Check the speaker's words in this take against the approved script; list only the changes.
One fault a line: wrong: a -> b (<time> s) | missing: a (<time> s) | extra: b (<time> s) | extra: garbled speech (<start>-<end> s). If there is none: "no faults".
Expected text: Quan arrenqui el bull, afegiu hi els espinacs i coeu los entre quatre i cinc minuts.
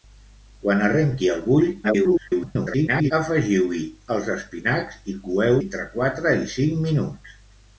extra: garbled speech (1.8-3.1 s)
missing: los (5.6 s)